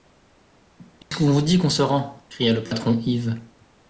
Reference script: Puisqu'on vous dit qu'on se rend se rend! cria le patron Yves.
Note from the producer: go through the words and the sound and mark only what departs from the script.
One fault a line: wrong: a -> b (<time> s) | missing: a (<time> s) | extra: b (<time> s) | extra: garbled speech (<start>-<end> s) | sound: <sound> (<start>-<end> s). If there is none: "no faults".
sound: dropout (1.0-1.1 s)
missing: se rend (2.2 s)